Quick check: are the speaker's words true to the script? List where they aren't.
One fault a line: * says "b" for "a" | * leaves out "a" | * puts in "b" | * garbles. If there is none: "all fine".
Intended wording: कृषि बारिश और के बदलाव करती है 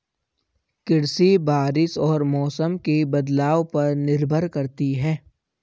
* puts in "मौसम"
* puts in "पर निर्भर"